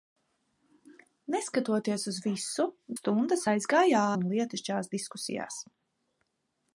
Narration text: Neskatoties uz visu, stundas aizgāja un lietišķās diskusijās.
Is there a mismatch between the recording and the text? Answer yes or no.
no